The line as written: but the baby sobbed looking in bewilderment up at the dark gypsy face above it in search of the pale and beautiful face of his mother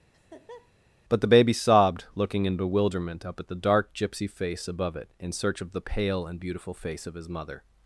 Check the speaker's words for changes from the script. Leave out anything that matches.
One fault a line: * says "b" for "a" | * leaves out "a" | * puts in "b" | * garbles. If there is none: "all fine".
all fine